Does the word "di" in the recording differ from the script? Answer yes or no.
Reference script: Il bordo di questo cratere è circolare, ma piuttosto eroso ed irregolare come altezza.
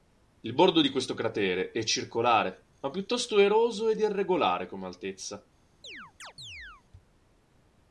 no